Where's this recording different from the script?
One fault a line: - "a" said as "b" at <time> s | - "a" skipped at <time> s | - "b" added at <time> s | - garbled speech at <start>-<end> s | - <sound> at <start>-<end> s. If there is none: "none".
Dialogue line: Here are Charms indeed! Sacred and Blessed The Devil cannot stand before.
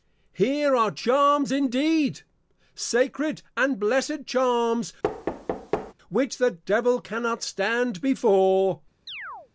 - "Charms which" added at 4.3 s
- thud at 5.0-5.9 s
- chirp at 9.1-9.5 s